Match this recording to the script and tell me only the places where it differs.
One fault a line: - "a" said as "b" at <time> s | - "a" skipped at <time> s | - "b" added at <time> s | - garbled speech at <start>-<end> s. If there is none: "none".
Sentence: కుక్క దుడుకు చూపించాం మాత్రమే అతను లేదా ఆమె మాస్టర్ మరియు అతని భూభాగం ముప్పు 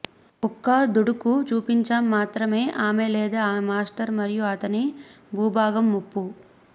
- "అతను" said as "ఆమె" at 2.8 s